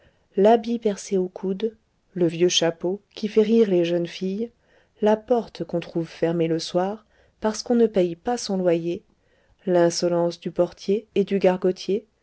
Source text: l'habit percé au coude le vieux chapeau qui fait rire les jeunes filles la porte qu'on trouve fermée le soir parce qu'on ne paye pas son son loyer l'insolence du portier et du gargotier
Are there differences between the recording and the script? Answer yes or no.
yes